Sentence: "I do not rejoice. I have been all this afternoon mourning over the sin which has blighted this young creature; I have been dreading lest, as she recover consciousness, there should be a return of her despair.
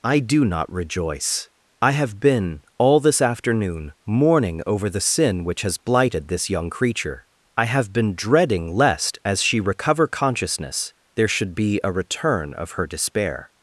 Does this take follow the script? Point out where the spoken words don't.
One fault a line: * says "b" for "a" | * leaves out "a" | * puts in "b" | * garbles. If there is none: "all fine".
all fine